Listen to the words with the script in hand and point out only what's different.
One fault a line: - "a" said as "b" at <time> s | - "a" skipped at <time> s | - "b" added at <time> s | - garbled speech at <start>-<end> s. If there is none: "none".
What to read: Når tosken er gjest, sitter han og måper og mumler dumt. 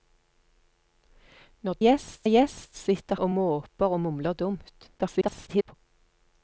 - "tosken" said as "gjest" at 1.8 s
- "han" skipped at 3.2 s
- garbled speech at 5.0-5.7 s